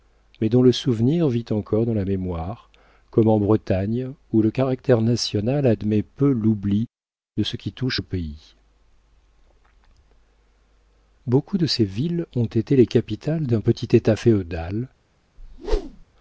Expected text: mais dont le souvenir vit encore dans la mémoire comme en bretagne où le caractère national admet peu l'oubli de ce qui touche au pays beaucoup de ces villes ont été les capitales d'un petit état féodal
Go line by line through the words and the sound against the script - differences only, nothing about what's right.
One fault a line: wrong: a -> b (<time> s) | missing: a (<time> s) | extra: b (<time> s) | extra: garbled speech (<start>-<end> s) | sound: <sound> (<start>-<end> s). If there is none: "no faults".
sound: whoosh (15.4-16.0 s)